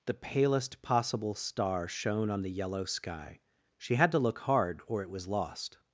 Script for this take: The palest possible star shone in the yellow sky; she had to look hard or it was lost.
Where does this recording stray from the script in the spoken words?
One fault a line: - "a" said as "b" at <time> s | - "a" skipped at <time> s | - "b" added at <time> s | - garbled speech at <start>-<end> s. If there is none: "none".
- "in" said as "on" at 2.3 s